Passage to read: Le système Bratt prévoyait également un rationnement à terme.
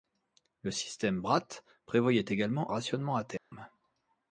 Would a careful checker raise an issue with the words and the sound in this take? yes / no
yes